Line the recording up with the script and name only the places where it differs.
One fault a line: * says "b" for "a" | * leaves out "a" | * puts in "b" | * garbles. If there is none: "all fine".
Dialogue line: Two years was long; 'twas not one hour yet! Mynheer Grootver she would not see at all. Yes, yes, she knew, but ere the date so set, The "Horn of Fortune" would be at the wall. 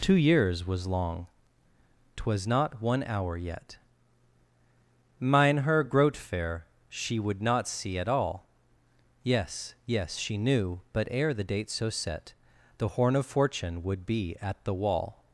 all fine